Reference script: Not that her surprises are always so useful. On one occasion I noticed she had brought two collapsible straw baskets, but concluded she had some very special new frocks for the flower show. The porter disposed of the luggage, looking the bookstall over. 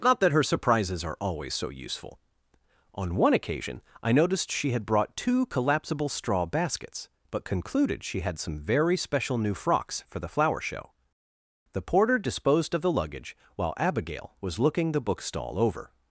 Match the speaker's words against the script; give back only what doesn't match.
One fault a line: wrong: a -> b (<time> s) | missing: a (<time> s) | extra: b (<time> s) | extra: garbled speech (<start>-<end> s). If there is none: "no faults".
extra: while Abigail was (13.6 s)